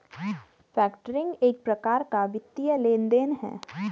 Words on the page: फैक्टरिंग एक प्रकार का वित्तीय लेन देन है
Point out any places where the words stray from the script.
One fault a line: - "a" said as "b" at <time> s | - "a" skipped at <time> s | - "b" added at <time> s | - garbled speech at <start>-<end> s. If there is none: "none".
none